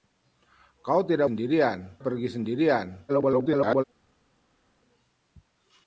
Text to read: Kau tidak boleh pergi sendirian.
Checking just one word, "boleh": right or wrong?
wrong